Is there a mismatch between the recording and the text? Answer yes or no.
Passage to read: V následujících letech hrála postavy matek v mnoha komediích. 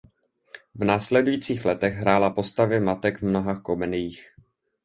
no